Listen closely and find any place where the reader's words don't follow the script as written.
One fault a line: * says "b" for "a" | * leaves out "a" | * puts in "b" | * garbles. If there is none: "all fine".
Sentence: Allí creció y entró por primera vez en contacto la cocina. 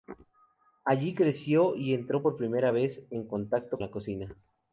all fine